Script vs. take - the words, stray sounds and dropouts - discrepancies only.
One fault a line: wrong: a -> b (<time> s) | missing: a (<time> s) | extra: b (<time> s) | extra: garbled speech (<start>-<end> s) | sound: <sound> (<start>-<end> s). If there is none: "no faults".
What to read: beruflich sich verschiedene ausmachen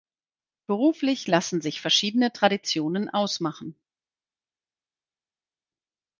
extra: lassen (1.3 s)
extra: traditionen (2.3 s)